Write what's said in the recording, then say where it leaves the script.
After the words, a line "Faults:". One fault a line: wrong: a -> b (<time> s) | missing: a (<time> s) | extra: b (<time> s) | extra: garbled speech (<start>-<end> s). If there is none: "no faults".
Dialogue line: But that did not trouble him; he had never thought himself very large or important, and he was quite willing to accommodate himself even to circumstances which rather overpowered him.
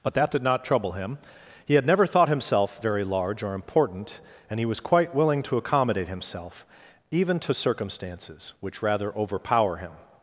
But that did not trouble him; he had never thought himself very large or important, and he was quite willing to accommodate himself even to circumstances which rather overpower him.
Faults:
wrong: overpowered -> overpower (9.1 s)